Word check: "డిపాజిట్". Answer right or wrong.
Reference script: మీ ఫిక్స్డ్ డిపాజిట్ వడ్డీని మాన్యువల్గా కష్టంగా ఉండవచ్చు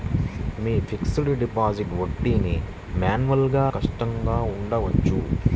right